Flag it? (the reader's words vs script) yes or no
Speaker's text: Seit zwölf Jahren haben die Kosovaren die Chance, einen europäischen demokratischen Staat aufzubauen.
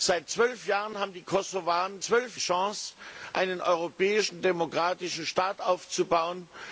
yes